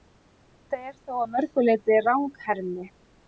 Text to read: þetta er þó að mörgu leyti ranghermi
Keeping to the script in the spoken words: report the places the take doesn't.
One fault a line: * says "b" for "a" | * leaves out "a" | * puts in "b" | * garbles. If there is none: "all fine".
all fine